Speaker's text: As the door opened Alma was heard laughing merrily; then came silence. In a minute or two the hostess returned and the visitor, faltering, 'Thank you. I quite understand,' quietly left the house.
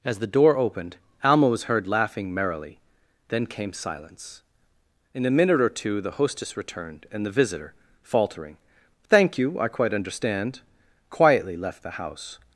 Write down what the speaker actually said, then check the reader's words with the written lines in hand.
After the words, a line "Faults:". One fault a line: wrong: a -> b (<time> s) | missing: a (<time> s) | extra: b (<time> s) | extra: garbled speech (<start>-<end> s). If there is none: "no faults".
As the door opened Alma was heard laughing merrily; then came silence. In a minute or two the hostess returned and the visitor, faltering, 'Thank you. I quite understand,' quietly left the house.
Faults:
no faults